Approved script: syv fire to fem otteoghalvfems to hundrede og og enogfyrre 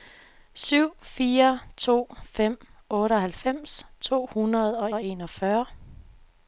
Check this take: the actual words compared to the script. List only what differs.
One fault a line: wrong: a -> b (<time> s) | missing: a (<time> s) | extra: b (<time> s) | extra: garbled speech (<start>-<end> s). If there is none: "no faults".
no faults